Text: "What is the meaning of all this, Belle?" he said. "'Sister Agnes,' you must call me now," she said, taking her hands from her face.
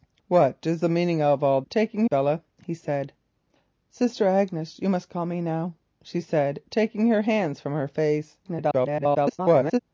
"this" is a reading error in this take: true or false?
true